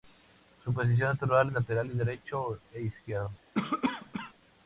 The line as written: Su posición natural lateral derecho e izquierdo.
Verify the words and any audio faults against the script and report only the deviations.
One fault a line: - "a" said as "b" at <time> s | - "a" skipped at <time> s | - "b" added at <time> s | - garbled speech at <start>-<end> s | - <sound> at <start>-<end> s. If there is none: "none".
- cough at 3.5-4.3 s